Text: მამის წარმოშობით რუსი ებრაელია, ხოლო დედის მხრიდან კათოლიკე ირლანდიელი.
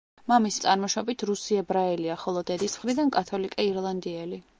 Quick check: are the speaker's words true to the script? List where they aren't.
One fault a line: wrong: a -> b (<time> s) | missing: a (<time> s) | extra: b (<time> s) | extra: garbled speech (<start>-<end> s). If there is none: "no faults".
no faults